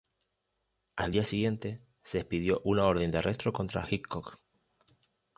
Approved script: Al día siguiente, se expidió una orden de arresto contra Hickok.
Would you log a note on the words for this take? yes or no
no